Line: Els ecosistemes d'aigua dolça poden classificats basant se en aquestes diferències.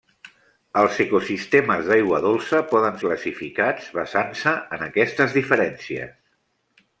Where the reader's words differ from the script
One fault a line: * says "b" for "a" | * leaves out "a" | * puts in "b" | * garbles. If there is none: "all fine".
all fine